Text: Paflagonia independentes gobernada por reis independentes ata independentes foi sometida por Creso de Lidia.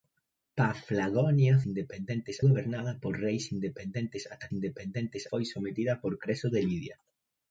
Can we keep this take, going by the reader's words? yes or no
yes